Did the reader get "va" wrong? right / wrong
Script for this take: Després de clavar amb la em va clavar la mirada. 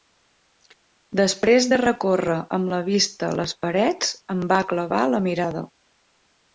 right